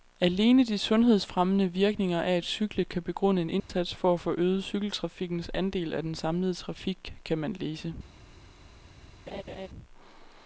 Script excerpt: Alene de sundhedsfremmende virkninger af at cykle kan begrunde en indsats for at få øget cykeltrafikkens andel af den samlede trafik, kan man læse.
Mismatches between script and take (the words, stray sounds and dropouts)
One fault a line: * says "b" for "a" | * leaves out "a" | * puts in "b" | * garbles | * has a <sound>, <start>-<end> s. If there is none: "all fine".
* has a dropout, 3.6-3.7 s
* has a laugh, 9.3-9.7 s